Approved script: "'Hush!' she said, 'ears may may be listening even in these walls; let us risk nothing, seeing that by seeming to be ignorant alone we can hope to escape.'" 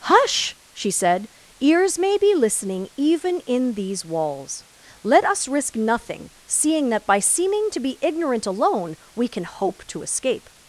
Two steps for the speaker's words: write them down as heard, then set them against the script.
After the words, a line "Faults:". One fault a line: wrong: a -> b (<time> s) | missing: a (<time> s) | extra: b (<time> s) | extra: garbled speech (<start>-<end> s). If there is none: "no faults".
"'Hush!' she said, 'ears may be listening even in these walls; let us risk nothing, seeing that by seeming to be ignorant alone we can hope to escape.'"
Faults:
missing: may (2.2 s)